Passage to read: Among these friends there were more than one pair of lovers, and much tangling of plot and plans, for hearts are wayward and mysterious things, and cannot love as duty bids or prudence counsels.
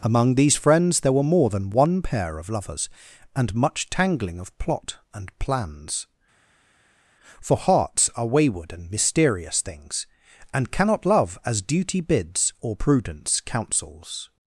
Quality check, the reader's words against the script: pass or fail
pass